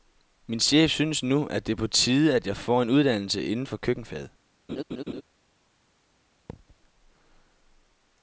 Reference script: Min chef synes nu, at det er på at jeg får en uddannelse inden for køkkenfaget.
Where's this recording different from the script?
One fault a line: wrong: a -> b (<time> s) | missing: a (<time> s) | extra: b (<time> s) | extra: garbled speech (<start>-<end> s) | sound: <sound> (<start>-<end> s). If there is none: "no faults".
extra: tide (1.9 s)
sound: laugh (4.7-5.2 s)
sound: thud (6.5-6.8 s)